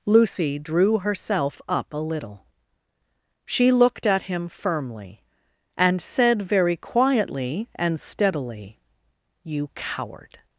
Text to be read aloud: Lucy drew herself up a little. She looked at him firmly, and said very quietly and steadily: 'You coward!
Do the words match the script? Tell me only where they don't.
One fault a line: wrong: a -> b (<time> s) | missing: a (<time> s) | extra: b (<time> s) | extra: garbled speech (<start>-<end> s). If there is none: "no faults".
no faults